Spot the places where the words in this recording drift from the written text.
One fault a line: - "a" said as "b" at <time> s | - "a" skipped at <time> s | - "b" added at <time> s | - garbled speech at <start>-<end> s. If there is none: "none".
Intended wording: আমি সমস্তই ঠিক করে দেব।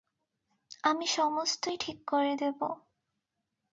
none